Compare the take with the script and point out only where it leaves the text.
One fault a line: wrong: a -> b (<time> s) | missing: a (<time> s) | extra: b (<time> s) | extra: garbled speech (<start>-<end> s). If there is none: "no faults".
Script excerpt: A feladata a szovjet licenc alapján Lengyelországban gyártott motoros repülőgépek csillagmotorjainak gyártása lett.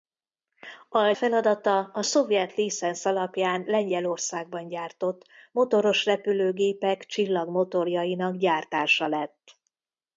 no faults